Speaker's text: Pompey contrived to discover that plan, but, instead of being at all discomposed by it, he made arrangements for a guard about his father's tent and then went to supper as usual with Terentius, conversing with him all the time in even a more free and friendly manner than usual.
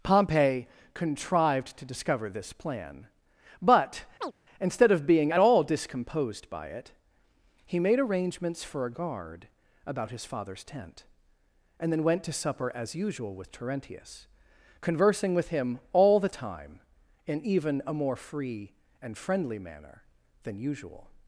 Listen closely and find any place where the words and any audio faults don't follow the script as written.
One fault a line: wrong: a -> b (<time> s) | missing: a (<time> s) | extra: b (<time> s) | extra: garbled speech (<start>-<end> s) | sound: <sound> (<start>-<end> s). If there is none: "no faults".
wrong: that -> this (2.3 s)
sound: chirp (4.2-4.3 s)